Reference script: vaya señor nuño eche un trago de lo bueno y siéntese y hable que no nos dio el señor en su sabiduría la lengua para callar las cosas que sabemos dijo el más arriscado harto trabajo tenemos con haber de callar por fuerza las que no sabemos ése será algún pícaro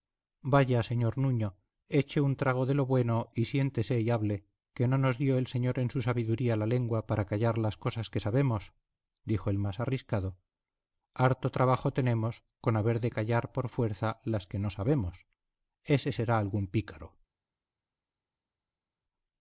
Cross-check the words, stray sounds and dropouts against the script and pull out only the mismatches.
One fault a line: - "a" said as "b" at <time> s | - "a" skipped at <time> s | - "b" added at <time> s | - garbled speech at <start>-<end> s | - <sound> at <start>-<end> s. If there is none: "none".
none